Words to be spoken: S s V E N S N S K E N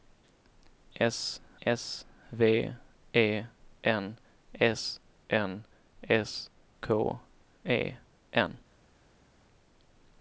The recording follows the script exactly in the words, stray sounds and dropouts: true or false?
true